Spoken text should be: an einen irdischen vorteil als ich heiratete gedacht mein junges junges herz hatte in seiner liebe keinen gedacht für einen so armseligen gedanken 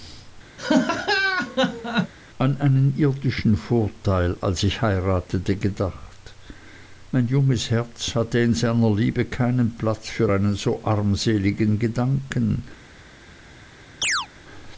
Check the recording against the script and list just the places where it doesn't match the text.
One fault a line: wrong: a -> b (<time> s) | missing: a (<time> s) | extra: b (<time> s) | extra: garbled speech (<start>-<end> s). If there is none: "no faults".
missing: junges (7.7 s)
wrong: gedacht -> platz (9.8 s)